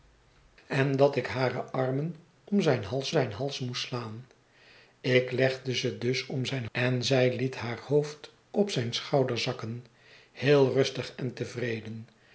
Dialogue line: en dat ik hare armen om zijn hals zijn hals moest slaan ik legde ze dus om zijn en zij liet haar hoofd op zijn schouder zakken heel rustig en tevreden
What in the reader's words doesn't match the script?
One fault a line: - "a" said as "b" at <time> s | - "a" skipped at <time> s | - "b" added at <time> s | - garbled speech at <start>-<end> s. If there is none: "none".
none